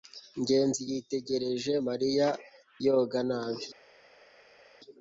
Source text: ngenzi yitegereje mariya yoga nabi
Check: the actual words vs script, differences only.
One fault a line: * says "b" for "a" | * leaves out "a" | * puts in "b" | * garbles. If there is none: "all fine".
all fine